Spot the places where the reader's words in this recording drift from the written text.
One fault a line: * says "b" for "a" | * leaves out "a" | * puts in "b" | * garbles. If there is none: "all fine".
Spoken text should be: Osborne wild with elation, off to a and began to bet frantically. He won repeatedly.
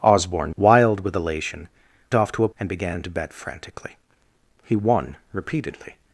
all fine